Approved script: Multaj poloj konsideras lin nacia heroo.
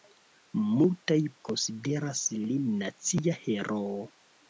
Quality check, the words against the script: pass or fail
fail